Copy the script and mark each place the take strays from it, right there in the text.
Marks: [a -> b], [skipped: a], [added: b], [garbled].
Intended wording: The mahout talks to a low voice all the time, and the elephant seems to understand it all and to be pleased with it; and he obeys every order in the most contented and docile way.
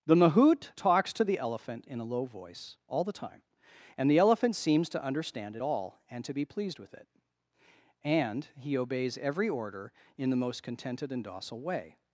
The mahout talks to [added: the elephant in] a low voice all the time, and the elephant seems to understand it all and to be pleased with it; and he obeys every order in the most contented and docile way.